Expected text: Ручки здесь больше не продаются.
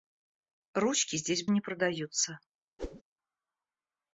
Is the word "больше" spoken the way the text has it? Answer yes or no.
no